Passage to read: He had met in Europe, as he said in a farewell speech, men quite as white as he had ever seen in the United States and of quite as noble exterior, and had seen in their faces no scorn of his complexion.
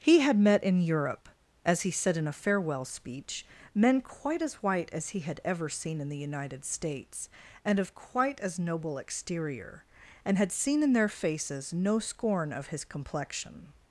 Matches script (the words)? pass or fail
pass